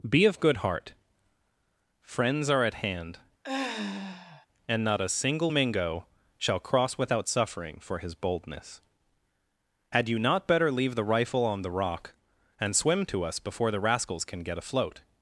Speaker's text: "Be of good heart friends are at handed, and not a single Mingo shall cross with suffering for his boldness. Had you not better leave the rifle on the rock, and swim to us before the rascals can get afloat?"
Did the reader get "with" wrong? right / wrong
wrong